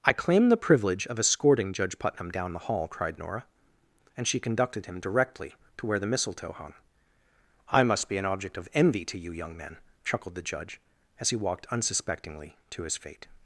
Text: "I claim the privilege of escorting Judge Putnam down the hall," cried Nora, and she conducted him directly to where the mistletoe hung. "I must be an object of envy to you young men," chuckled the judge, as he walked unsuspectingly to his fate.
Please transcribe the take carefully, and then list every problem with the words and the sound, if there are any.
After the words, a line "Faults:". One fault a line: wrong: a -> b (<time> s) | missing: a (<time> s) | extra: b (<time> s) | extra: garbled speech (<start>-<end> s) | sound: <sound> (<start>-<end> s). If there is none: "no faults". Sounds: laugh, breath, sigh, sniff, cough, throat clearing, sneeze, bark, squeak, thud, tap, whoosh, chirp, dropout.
"I claim the privilege of escorting Judge Putnam down the hall," cried Nora, and she conducted him directly to where the mistletoe hung. "I must be an object of envy to you young men," chuckled the judge, as he walked unsuspectingly to his fate.
Faults:
no faults